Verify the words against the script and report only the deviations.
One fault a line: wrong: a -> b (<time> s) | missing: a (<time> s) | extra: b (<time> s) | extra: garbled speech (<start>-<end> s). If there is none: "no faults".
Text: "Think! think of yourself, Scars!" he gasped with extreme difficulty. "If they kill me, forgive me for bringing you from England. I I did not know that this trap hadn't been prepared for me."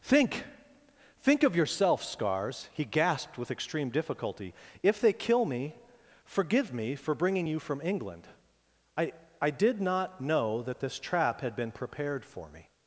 wrong: hadn't -> had (11.4 s)